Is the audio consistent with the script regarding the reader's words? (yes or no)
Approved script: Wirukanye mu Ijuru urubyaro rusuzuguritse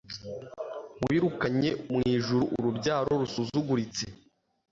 yes